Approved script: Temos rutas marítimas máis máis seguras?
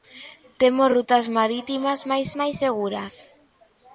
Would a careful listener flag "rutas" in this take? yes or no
no